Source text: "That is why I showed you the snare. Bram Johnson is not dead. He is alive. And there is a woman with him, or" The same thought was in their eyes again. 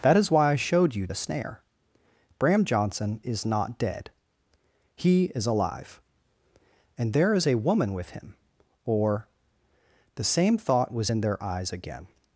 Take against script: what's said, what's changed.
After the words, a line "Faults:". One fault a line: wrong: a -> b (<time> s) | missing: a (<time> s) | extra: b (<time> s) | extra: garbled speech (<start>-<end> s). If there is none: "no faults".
"That is why I showed you the snare. Bram Johnson is not dead. He is alive. And there is a woman with him, or" The same thought was in their eyes again.
Faults:
no faults